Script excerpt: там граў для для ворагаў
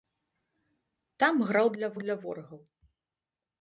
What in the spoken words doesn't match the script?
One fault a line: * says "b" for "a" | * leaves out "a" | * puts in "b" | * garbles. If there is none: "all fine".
all fine